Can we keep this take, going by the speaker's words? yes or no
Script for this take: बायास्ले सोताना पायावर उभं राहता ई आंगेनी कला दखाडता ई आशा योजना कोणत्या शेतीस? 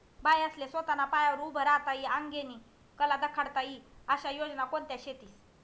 yes